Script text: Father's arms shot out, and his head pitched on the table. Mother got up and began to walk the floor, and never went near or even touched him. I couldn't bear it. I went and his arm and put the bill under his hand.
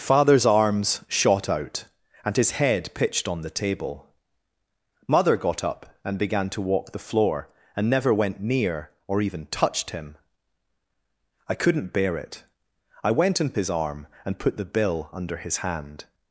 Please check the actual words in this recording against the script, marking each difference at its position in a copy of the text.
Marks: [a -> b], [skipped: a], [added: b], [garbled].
Father's arms shot out, and his head pitched on the table. Mother got up and began to walk the floor, and never went near or even touched him. I couldn't bear it. I went and his arm and put the bill under his hand.